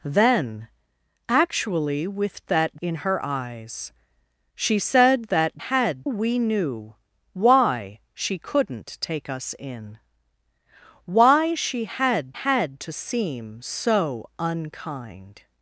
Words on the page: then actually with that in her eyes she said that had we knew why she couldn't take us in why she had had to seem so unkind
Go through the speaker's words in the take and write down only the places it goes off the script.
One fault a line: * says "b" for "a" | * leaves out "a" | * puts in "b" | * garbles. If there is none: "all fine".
all fine